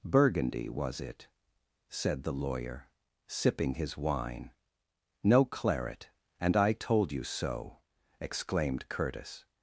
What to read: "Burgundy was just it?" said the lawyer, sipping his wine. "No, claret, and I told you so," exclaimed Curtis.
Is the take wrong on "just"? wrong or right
wrong